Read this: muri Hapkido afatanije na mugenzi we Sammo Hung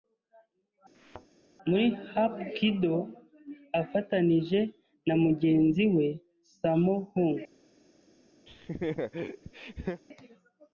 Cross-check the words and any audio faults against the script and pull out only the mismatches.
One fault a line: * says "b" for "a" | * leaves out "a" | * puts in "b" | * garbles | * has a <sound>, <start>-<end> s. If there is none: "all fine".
* has a thud, 0.9-1.3 s
* has a laugh, 8.5-10.0 s